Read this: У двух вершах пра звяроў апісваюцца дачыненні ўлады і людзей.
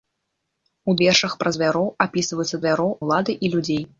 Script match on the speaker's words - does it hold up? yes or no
no